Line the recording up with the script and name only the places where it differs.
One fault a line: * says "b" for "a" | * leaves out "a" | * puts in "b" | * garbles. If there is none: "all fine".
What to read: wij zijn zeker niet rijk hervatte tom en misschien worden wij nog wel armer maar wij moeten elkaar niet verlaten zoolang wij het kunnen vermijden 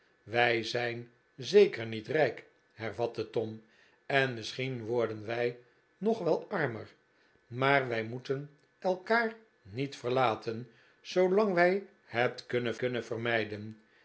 * puts in "kunnen"